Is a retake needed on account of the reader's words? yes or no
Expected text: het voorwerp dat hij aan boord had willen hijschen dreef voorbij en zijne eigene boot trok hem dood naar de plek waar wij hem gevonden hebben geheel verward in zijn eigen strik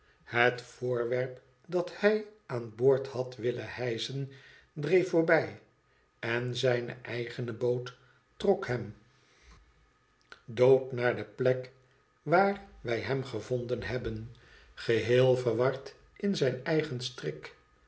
no